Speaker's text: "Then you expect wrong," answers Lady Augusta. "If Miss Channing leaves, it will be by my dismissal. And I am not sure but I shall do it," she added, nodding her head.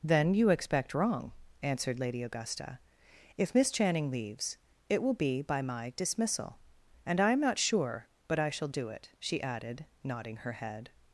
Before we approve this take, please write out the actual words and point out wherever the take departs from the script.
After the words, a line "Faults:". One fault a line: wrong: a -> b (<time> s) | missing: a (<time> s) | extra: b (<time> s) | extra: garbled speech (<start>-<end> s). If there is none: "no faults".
"Then you expect wrong," answered Lady Augusta. "If Miss Channing leaves, it will be by my dismissal. And I am not sure but I shall do it," she added, nodding her head.
Faults:
wrong: answers -> answered (1.6 s)